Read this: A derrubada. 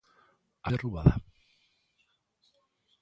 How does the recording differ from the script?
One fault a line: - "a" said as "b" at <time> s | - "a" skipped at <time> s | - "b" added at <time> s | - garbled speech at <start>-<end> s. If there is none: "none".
none